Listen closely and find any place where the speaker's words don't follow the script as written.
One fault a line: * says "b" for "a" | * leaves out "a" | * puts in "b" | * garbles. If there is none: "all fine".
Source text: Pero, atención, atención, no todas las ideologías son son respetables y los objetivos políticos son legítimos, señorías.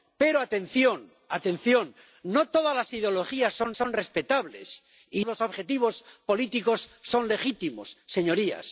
all fine